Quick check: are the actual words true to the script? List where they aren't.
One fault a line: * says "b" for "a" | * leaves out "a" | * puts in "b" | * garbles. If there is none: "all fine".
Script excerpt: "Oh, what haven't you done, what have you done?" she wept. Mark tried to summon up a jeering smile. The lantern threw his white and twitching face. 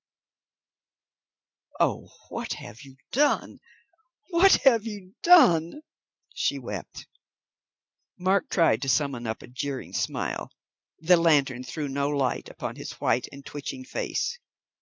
* says "have" for "haven't"
* puts in "no light upon"